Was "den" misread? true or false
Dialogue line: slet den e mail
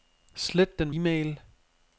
false